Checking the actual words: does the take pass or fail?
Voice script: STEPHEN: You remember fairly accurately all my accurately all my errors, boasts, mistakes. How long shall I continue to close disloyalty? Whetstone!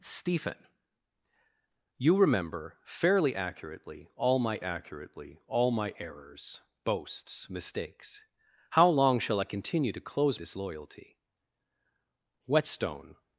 pass